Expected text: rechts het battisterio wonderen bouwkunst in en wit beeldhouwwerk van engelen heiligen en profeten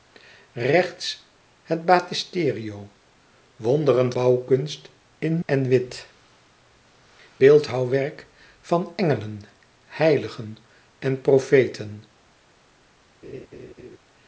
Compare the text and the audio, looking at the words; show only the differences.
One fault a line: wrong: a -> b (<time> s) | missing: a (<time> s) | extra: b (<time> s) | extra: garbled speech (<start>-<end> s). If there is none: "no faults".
no faults